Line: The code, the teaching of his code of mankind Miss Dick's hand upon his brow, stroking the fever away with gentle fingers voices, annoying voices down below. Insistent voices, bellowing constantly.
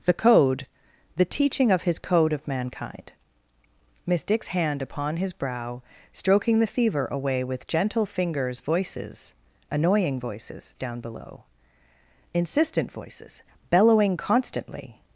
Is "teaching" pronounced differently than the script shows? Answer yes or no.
no